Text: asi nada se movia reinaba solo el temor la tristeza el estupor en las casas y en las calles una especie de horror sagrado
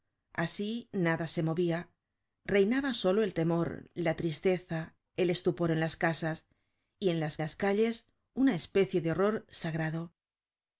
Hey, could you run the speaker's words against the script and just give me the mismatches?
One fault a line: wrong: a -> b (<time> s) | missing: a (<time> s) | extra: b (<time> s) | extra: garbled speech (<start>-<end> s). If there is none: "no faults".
extra: las (7.4 s)